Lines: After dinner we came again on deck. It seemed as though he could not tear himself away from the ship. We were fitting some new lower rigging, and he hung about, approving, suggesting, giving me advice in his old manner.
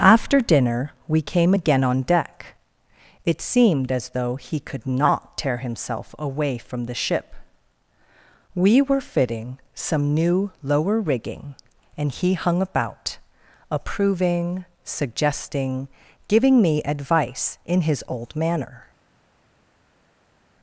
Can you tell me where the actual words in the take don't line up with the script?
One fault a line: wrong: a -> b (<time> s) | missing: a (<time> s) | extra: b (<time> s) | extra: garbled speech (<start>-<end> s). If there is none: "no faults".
no faults